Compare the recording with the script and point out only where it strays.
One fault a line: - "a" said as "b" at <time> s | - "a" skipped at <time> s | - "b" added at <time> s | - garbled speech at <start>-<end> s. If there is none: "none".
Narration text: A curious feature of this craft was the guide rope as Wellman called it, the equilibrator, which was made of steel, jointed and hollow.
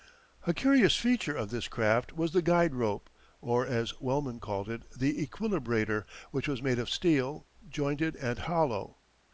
- "or" added at 3.4 s